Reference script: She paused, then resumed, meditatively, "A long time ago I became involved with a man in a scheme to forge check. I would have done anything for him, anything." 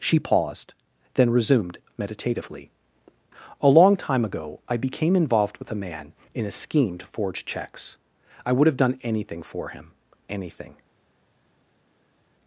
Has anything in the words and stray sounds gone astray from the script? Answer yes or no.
yes